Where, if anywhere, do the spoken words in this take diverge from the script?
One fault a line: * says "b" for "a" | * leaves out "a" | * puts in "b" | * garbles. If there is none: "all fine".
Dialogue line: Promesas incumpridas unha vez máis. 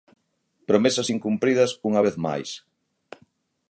all fine